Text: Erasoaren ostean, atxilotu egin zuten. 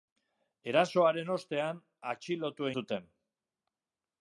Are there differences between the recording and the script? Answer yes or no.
yes